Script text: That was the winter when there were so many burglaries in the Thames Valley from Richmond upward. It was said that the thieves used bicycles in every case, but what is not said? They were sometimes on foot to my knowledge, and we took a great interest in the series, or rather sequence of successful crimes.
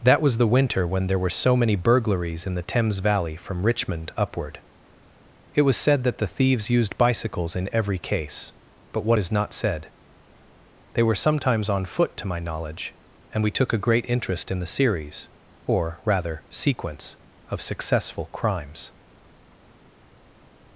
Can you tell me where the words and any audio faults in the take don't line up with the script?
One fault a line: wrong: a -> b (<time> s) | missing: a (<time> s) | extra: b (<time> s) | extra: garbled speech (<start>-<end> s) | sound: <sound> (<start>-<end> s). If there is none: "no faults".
no faults